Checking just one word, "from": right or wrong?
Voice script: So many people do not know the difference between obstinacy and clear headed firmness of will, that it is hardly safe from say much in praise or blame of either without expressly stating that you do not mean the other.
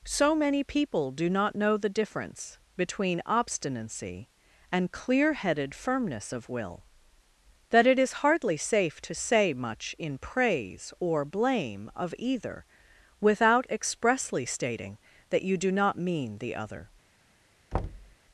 wrong